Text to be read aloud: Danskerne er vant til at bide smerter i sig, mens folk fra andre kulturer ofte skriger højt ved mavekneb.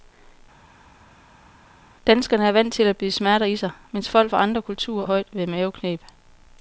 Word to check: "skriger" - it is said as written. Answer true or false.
false